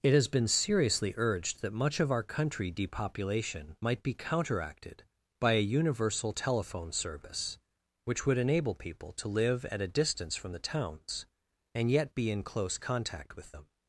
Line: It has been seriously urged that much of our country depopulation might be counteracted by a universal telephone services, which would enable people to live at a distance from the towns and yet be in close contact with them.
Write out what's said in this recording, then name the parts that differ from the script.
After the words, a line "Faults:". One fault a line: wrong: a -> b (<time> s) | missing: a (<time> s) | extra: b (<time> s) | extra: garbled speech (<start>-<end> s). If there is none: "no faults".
It has been seriously urged that much of our country depopulation might be counteracted by a universal telephone service, which would enable people to live at a distance from the towns and yet be in close contact with them.
Faults:
wrong: services -> service (6.9 s)